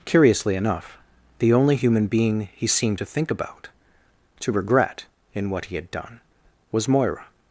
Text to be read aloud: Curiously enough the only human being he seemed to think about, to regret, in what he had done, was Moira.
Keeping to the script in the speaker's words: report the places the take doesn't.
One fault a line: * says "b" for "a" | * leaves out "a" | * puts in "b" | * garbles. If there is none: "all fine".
all fine